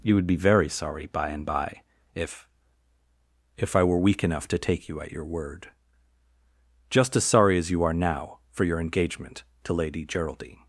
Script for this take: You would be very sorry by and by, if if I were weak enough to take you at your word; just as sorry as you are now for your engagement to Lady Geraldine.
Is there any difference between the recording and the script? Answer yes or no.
no